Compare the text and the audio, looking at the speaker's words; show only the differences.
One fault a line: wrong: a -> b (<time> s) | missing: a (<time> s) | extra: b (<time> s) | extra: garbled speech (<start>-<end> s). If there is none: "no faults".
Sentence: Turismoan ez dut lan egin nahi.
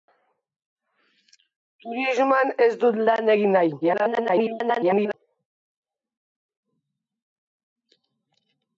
extra: garbled speech (3.8-5.1 s)